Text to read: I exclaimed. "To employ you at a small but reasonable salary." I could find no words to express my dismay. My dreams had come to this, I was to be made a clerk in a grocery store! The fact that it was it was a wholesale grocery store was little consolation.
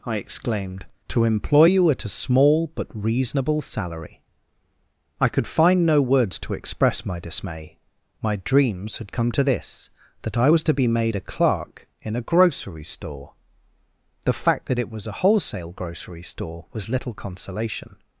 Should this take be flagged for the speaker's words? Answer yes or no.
yes